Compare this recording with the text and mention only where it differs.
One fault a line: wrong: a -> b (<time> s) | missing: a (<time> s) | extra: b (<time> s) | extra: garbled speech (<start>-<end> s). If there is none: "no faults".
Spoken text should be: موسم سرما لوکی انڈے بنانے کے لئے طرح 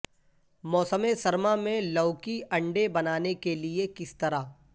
extra: میں (1.6 s)
extra: کس (4.0 s)